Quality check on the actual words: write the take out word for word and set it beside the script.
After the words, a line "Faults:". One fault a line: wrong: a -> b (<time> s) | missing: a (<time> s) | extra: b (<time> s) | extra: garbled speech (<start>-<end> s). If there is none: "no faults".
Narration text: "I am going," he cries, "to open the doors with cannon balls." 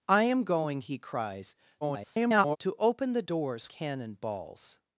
"I am going," he cries, [garbled] "to open the doors cannon balls."
Faults:
extra: garbled speech (1.8-2.6 s)
missing: with (3.7 s)